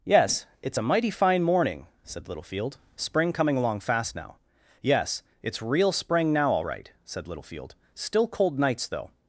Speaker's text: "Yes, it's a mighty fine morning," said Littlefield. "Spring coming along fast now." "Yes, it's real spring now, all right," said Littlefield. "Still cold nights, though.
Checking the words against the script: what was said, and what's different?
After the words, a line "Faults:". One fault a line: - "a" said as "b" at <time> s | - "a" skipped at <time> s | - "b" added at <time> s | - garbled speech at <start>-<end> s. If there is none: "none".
"Yes, it's a mighty fine morning," said Littlefield. "Spring coming along fast now." "Yes, it's real spring now, all right," said Littlefield. "Still cold nights, though.
Faults:
none